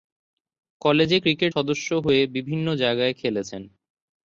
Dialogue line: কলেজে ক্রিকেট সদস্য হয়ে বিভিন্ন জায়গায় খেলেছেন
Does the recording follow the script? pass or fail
pass